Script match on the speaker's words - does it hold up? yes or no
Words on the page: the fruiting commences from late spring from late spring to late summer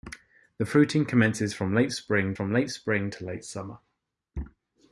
yes